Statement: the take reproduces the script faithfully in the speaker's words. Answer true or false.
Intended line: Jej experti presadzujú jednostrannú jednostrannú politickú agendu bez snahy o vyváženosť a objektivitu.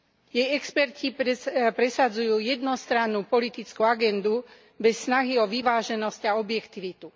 false